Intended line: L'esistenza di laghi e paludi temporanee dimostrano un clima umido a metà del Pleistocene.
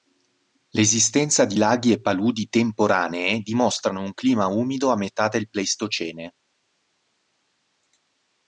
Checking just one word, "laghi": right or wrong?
right